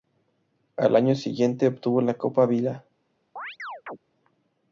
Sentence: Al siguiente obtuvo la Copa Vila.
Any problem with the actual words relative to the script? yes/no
yes